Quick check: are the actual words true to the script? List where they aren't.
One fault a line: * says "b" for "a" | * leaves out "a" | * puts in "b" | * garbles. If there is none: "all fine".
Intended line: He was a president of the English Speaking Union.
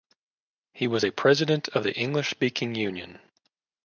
all fine